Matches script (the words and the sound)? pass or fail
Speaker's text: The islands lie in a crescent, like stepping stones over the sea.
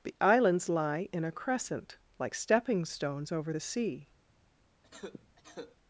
fail